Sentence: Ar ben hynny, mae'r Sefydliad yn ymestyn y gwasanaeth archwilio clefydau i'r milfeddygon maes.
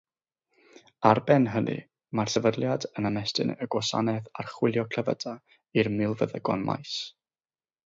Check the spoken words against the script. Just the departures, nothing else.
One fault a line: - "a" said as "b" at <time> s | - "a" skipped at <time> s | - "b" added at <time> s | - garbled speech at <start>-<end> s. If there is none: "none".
none